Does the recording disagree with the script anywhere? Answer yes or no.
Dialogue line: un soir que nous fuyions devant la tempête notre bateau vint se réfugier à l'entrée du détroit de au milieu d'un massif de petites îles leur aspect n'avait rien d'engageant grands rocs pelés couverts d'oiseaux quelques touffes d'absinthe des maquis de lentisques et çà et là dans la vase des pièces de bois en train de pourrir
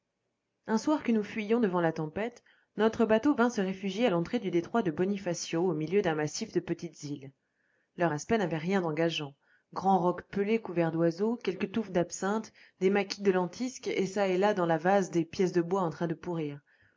yes